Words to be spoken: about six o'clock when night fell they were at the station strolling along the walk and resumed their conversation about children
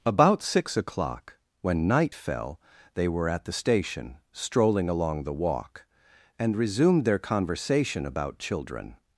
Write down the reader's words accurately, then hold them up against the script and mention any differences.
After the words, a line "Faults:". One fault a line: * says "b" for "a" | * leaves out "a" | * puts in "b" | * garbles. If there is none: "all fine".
about six o'clock when night fell they were at the station strolling along the walk and resumed their conversation about children
Faults:
all fine